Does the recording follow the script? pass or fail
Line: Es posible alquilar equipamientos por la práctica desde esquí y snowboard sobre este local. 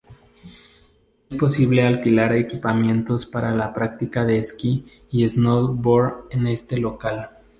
fail